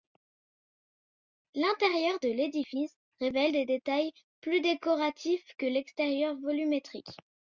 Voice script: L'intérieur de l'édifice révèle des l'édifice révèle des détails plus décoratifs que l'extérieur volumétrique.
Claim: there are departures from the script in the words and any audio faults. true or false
true